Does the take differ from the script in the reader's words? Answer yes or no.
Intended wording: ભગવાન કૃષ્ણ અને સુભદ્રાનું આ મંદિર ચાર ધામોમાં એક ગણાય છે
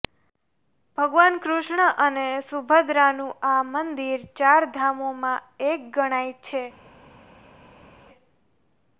no